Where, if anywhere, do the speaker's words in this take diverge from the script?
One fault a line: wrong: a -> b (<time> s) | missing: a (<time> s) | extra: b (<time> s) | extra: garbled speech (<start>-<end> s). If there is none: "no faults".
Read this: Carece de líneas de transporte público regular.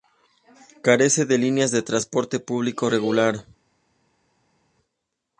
no faults